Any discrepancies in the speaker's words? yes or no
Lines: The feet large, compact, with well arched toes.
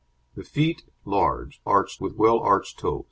yes